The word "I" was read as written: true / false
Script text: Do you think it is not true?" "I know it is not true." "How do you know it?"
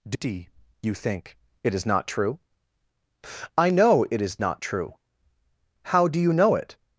true